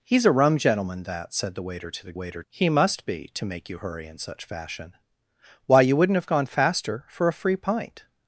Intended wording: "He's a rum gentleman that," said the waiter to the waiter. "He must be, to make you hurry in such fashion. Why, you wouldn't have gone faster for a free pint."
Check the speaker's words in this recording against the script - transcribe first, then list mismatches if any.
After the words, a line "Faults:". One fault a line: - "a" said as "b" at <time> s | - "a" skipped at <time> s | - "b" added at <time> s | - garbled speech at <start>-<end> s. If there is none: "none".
"He's a rum gentleman that," said the waiter to the waiter. "He must be, to make you hurry in such fashion. Why, you wouldn't have gone faster for a free pint."
Faults:
none